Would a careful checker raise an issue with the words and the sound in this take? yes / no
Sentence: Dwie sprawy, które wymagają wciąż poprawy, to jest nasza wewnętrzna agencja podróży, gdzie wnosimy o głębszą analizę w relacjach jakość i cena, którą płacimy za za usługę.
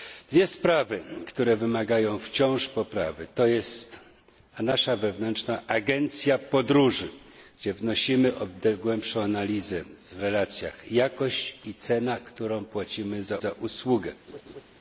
yes